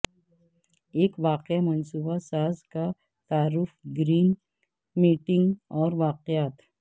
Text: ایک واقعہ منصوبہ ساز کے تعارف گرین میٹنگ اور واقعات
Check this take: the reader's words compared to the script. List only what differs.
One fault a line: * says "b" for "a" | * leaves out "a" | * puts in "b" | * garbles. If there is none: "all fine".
* says "کا" for "کے"